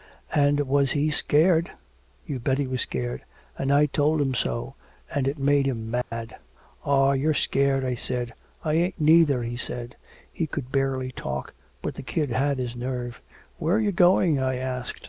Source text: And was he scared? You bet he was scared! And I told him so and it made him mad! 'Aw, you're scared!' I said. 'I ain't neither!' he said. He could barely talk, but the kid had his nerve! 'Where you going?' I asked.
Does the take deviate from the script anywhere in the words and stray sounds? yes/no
yes